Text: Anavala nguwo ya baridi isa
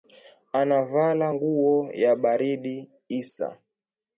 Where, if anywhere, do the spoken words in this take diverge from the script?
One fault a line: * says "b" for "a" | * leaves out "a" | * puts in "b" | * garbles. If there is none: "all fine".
all fine